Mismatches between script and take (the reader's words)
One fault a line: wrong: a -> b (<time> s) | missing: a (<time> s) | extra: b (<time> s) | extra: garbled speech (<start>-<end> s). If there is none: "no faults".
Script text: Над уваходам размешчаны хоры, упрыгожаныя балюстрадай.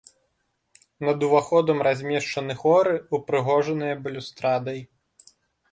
no faults